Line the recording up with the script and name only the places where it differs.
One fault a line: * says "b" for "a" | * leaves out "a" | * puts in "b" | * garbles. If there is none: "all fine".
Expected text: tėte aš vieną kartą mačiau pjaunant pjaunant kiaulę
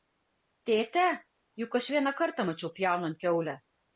* puts in "juk"
* leaves out "pjaunant"